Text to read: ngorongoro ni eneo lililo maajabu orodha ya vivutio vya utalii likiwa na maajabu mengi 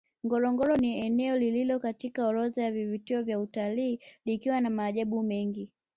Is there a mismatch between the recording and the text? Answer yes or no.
yes